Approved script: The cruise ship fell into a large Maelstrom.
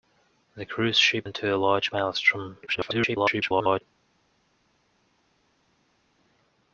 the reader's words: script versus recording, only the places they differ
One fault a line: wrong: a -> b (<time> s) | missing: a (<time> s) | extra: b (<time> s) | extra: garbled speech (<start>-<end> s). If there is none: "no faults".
missing: fell (1.3 s)
extra: garbled speech (2.7-3.8 s)